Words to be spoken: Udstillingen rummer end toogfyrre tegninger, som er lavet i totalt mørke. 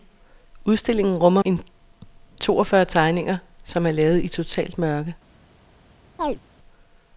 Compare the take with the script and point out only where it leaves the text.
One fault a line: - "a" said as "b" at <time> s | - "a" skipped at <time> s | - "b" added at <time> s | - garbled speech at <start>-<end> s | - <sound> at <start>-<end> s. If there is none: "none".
- chirp at 6.2-6.4 s